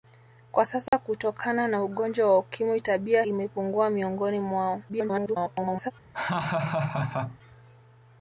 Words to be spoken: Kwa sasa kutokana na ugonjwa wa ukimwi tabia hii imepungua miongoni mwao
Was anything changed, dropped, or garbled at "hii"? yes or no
yes